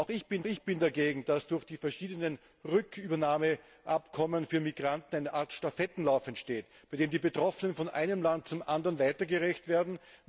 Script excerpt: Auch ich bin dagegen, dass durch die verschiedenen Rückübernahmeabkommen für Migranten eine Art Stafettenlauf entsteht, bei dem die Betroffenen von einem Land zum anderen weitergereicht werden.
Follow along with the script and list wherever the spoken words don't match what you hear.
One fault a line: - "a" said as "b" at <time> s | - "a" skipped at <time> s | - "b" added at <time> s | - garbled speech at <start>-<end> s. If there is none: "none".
- "ich bin" added at 0.4 s